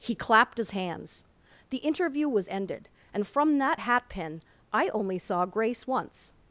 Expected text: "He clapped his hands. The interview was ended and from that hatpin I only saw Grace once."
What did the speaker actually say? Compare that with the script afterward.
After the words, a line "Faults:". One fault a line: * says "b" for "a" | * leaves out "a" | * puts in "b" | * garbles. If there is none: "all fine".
"He clapped his hands. The interview was ended and from that hatpin I only saw Grace once."
Faults:
all fine